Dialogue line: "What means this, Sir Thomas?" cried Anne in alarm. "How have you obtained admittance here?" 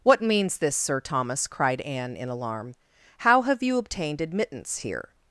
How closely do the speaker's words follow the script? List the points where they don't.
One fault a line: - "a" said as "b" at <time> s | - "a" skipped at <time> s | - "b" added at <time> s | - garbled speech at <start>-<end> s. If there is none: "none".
none